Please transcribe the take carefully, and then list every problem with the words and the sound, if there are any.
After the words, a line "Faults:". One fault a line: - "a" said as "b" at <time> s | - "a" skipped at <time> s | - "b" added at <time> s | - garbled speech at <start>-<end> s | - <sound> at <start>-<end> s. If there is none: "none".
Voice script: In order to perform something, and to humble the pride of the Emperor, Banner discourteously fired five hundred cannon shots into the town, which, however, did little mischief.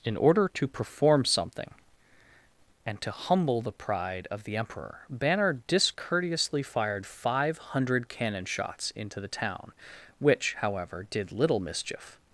In order to perform something, and to humble the pride of the Emperor, Banner discourteously fired five hundred cannon shots into the town, which, however, did little mischief.
Faults:
none